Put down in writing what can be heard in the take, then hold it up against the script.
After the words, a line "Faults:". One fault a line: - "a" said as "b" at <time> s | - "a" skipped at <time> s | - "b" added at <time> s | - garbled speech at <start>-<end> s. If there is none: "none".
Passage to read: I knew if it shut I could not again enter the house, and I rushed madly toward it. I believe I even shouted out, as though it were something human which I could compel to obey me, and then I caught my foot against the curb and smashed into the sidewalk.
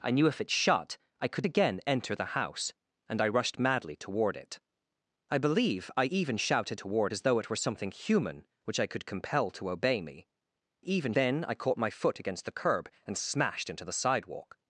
I knew if it shut I could again enter the house, and I rushed madly toward it. I believe I even shouted toward, as though it were something human which I could compel to obey me, even then I caught my foot against the curb and smashed into the sidewalk.
Faults:
- "not" skipped at 1.4 s
- "out" said as "toward" at 6.7 s
- "and" said as "even" at 10.8 s